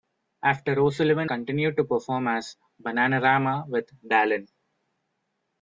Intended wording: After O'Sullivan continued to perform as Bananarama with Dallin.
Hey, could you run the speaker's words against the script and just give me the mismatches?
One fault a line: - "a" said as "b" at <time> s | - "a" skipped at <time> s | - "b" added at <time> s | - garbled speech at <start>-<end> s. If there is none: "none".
none